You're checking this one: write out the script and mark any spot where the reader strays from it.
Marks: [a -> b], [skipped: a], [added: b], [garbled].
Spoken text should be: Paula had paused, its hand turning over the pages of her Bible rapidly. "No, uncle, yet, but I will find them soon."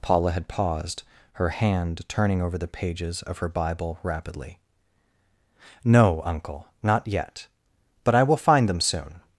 Paula had paused, [its -> her] hand turning over the pages of her Bible rapidly. "No, uncle, [added: not] yet, but I will find them soon."